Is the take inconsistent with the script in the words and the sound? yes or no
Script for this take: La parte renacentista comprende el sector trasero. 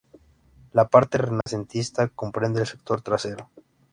yes